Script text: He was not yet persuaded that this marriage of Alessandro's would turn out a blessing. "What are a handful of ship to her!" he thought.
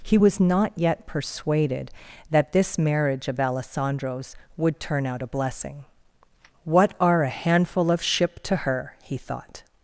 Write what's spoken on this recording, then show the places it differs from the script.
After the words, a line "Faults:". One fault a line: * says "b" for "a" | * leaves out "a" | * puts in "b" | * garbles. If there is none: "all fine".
He was not yet persuaded that this marriage of Alessandro's would turn out a blessing. "What are a handful of ship to her!" he thought.
Faults:
all fine